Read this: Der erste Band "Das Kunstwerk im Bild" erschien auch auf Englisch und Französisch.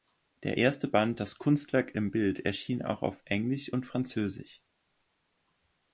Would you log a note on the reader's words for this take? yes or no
no